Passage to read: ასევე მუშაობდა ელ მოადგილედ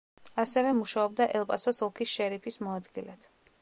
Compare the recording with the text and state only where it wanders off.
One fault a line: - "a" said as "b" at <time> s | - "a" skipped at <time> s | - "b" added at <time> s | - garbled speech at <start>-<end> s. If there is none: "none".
- "პასოს ოლქის შერიფის" added at 1.5 s